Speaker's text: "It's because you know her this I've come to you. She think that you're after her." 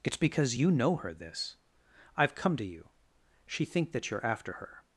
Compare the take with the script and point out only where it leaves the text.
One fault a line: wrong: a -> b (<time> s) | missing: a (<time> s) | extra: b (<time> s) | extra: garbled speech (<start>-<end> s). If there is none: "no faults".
no faults